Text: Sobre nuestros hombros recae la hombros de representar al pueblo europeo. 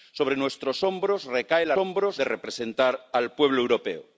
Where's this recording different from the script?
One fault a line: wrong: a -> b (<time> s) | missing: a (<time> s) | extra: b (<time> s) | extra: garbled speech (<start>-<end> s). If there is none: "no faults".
no faults